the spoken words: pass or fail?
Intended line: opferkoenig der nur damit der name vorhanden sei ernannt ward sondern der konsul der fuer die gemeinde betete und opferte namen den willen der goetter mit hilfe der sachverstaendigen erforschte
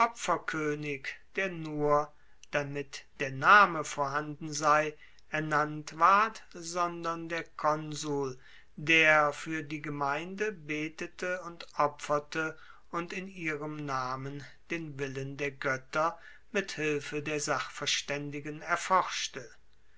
fail